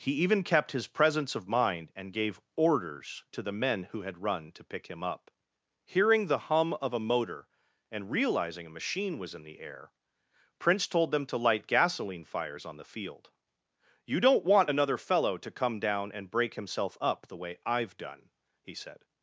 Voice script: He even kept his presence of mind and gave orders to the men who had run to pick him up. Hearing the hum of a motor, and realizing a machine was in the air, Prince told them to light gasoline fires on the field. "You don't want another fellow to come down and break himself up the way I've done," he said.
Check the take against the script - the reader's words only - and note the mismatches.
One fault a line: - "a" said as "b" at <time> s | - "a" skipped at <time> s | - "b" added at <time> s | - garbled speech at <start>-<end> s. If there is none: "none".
none